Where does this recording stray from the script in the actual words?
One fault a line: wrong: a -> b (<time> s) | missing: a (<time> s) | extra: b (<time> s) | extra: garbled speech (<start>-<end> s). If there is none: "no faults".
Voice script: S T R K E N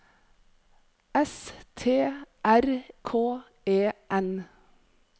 no faults